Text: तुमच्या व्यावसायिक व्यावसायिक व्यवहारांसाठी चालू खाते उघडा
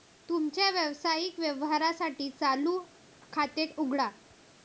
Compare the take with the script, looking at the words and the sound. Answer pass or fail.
fail